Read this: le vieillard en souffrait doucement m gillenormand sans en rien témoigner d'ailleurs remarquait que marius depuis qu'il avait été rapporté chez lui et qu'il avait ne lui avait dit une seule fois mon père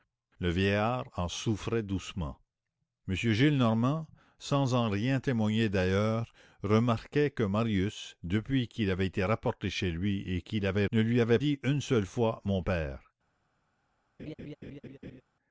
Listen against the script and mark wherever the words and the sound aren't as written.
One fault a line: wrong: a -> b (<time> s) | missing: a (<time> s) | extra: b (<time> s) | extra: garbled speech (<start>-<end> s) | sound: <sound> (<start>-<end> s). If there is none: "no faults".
sound: laugh (14.2-15.2 s)